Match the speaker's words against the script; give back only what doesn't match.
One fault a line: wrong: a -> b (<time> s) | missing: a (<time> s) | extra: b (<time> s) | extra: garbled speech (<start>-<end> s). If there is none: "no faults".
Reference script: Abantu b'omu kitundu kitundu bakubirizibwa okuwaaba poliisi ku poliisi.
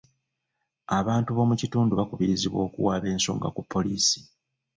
missing: kitundu (1.9 s)
wrong: poliisi -> ensonga (3.1 s)